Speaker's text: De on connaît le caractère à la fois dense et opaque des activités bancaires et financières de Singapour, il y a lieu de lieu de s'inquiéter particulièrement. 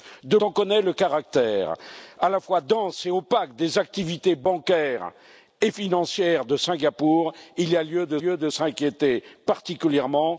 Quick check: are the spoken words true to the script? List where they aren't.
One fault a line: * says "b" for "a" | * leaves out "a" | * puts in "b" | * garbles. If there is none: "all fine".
all fine